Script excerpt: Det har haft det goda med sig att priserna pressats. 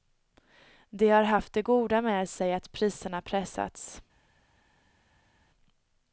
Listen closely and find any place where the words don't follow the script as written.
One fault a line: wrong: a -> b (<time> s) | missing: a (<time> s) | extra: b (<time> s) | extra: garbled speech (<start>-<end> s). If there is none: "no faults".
no faults